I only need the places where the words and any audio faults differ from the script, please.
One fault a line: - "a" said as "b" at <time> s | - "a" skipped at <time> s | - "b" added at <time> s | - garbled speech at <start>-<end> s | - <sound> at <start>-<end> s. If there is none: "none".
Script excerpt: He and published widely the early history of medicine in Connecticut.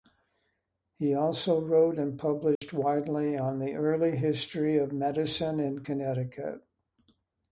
- "also wrote" added at 1.1 s
- dropout at 2.6-2.6 s
- "on" added at 3.4 s